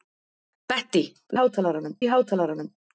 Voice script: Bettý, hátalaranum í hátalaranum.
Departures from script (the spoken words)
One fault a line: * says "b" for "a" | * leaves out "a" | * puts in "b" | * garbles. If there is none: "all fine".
all fine